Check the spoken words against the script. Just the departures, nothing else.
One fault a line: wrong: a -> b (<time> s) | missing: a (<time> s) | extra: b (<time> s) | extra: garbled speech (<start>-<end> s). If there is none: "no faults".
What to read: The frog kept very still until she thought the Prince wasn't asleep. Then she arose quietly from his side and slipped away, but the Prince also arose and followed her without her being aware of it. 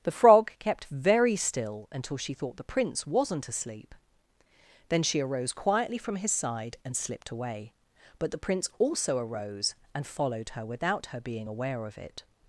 no faults